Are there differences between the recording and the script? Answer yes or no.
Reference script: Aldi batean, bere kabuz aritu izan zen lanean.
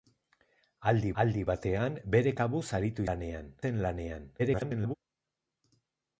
yes